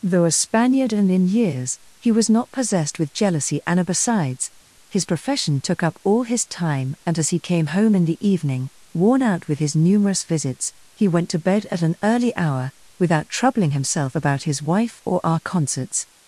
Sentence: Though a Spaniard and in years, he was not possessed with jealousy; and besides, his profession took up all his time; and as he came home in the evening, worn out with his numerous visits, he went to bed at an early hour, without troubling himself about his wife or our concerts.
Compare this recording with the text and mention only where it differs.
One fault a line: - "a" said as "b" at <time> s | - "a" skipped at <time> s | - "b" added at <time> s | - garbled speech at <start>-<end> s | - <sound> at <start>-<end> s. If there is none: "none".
none